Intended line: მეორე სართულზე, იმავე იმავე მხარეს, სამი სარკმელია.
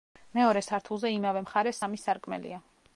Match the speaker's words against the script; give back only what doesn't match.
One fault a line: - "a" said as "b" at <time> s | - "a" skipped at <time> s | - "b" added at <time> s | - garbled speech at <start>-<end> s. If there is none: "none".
- "იმავე" skipped at 1.4 s